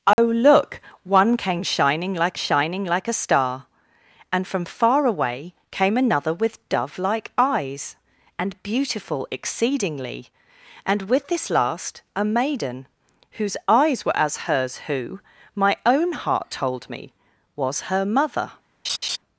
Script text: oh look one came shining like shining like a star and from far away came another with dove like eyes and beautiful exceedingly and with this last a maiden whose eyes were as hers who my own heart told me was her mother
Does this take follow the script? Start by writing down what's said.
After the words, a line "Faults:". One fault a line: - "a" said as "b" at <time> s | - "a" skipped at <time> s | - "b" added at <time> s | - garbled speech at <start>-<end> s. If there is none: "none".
oh look one came shining like shining like a star and from far away came another with dove like eyes and beautiful exceedingly and with this last a maiden whose eyes were as hers who my own heart told me was her mother
Faults:
none